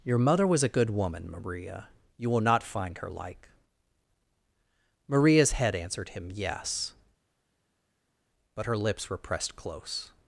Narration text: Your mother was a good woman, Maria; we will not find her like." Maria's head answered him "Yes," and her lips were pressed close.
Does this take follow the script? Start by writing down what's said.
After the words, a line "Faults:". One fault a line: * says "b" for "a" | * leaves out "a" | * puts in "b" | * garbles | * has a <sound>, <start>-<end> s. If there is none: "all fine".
Your mother was a good woman, Maria; you will not find her like." Maria's head answered him "Yes," but her lips were pressed close.
Faults:
* says "you" for "we"
* says "but" for "and"